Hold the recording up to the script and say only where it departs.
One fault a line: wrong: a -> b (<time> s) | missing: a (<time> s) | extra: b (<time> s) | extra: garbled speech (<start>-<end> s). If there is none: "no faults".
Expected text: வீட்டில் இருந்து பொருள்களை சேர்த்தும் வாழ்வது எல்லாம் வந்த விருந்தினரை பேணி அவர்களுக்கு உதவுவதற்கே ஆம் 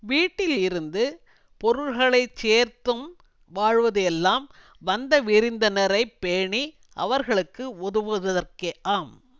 no faults